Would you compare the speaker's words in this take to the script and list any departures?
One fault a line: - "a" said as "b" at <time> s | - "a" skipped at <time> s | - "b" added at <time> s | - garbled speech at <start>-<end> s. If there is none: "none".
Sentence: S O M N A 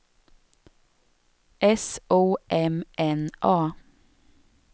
none